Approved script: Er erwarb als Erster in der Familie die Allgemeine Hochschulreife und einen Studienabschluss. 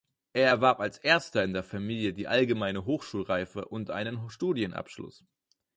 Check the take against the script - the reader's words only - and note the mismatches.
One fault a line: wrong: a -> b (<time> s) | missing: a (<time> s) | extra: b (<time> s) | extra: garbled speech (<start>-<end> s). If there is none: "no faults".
no faults